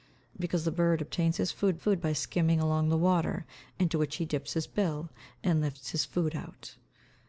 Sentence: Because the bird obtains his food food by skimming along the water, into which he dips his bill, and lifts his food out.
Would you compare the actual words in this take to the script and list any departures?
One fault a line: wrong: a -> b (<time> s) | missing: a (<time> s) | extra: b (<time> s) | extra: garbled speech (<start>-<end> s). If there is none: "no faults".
no faults